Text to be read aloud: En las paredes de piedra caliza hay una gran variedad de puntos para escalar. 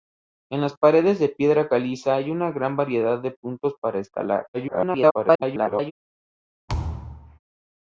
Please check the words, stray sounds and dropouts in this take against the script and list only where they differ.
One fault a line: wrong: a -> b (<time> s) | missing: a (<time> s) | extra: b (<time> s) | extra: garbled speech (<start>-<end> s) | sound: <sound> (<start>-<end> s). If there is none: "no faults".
extra: garbled speech (4.5-5.9 s)
sound: thud (6.7-7.4 s)